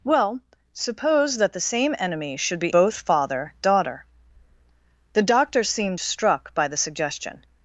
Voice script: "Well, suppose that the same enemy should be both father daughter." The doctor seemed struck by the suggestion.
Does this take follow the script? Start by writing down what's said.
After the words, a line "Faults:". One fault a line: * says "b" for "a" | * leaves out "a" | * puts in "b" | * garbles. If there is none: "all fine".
"Well, suppose that the same enemy should be both father daughter." The doctor seemed struck by the suggestion.
Faults:
all fine